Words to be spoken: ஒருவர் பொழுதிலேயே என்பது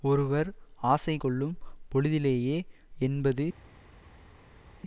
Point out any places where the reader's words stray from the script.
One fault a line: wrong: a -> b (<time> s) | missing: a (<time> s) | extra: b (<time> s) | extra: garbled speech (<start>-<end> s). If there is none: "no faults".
extra: ஆசை கொள்ளும் (0.9 s)